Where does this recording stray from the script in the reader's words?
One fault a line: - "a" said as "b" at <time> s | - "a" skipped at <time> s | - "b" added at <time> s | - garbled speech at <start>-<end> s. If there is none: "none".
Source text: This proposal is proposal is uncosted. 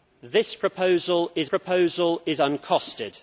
none